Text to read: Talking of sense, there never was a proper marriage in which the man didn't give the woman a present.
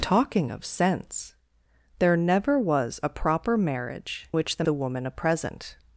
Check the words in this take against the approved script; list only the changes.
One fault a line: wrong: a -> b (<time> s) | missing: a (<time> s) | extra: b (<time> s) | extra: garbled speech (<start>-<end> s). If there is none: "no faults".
missing: in (4.3 s)
missing: man didn't give (4.6 s)